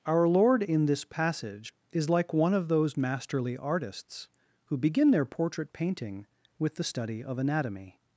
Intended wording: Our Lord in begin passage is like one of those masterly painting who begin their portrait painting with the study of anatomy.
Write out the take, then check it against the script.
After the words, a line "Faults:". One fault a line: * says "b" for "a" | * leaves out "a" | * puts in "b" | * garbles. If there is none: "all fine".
Our Lord in this passage is like one of those masterly artists who begin their portrait painting with the study of anatomy.
Faults:
* says "this" for "begin"
* says "artists" for "painting"